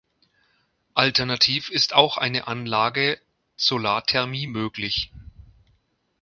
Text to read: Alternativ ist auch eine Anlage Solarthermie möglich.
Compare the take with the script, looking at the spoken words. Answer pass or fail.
pass